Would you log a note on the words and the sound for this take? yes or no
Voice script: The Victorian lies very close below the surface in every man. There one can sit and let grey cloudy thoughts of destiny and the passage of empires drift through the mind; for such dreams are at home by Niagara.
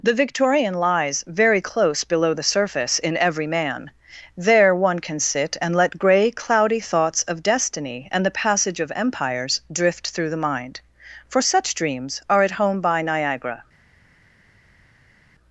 no